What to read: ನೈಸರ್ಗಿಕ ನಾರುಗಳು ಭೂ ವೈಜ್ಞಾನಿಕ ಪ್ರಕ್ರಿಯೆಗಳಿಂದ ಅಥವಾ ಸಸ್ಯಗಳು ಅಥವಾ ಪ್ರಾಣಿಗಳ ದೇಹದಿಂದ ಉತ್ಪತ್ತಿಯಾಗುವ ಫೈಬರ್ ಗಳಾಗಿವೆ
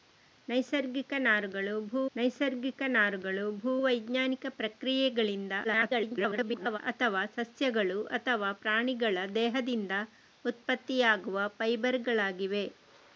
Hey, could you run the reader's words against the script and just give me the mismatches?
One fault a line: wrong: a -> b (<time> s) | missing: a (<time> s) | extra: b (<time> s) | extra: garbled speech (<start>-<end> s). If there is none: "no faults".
extra: ನೈಸರ್ಗಿಕ ನಾರುಗಳು ಭೂ (2.1 s)
extra: garbled speech (5.6-6.8 s)